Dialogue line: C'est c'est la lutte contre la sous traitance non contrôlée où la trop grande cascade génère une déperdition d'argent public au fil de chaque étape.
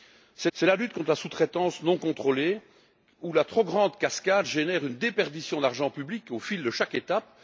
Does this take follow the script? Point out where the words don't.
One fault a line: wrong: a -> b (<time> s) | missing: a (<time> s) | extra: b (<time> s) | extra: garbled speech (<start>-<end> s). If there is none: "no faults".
no faults